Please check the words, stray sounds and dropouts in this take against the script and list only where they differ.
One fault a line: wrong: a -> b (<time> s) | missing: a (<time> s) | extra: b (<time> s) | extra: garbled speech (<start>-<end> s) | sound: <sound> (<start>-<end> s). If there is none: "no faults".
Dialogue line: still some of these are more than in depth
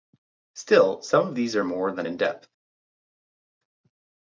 no faults